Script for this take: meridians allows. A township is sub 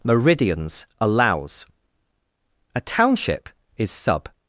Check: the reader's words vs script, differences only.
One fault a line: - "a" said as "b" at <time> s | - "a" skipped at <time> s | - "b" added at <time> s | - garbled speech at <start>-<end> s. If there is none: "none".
none